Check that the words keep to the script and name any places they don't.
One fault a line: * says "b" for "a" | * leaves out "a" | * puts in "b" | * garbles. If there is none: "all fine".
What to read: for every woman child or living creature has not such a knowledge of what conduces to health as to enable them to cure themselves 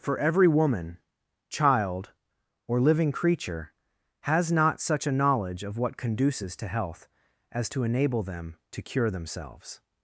all fine